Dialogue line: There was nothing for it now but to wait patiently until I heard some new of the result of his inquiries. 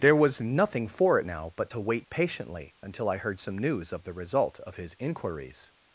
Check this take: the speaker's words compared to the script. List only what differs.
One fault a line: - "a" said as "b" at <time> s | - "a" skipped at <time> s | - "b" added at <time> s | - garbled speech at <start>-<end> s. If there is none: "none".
- "new" said as "news" at 3.6 s